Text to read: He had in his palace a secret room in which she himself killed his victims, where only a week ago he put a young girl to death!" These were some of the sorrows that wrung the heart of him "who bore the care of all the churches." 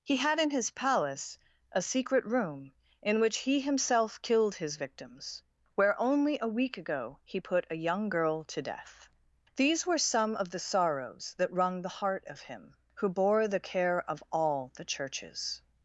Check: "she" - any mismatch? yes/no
yes